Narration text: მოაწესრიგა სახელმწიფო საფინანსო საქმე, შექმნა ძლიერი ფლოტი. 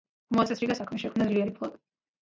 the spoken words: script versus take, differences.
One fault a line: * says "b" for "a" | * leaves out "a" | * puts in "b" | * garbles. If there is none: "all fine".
* leaves out "სახელმწიფო საფინანსო"